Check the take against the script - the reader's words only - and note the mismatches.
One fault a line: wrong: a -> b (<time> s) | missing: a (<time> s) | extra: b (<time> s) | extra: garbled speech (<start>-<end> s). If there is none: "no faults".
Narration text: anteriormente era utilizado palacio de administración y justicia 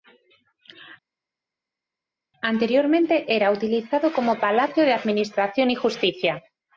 extra: como (4.1 s)